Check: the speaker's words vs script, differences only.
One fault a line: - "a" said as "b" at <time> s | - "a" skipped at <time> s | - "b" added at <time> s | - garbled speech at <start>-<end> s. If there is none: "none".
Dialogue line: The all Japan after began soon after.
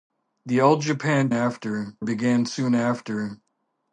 none